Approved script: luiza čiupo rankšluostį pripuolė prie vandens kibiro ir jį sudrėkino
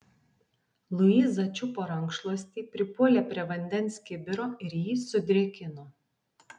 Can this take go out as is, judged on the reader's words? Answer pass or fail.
pass